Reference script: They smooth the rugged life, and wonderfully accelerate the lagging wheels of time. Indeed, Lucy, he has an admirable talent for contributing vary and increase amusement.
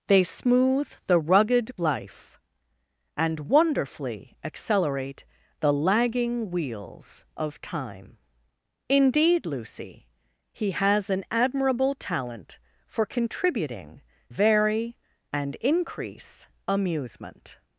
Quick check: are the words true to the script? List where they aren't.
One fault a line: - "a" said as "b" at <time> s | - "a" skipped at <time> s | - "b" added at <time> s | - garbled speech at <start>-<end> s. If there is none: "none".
none